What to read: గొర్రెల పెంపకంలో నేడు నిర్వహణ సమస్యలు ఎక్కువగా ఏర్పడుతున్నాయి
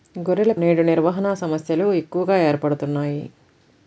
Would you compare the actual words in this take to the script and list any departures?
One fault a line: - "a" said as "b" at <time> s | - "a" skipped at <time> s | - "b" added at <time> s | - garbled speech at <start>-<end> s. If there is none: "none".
- "పెంపకంలో" skipped at 0.5 s